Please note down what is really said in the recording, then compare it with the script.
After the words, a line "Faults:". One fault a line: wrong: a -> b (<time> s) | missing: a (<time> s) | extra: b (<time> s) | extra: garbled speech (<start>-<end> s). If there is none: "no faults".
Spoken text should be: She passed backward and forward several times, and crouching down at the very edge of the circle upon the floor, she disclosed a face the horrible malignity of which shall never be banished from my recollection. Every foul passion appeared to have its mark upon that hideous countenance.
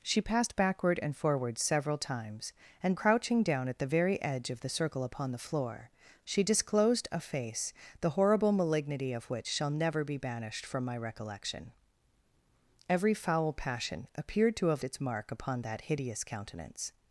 She passed backward and forward several times, and crouching down at the very edge of the circle upon the floor, she disclosed a face the horrible malignity of which shall never be banished from my recollection. Every foul passion appeared to have its mark upon that hideous countenance.
Faults:
no faults